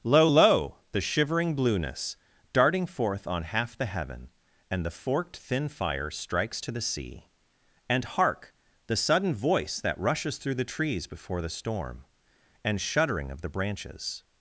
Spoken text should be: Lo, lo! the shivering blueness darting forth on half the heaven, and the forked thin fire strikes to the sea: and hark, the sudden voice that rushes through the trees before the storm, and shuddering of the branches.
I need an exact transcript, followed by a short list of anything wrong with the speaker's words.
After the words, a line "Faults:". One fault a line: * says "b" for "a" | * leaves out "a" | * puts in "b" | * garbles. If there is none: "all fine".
Lo, lo! the shivering blueness darting forth on half the heaven, and the forked thin fire strikes to the sea: and hark, the sudden voice that rushes through the trees before the storm, and shuddering of the branches.
Faults:
all fine